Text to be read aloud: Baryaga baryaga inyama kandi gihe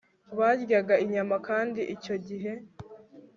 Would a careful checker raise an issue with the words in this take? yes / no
yes